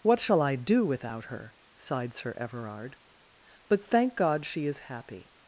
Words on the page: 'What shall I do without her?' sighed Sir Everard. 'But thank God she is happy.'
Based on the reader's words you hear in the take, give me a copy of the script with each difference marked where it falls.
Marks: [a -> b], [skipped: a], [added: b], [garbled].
'What shall I do without her?' sighed Sir Everard. 'But thank God she is happy.'